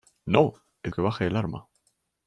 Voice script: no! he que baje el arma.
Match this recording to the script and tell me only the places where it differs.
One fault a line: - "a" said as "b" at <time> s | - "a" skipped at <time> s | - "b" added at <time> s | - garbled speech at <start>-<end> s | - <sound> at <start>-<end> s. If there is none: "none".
none